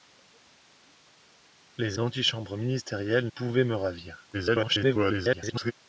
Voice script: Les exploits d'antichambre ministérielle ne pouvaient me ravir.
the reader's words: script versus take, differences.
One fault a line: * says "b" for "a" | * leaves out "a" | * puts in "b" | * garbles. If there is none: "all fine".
* leaves out "exploits"
* leaves out "ne"
* garbles